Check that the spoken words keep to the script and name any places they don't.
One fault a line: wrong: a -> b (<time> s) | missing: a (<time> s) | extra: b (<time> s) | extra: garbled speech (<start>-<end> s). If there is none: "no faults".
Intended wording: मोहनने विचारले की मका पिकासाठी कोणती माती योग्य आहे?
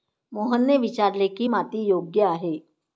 missing: मका पिकासाठी कोणती (1.5 s)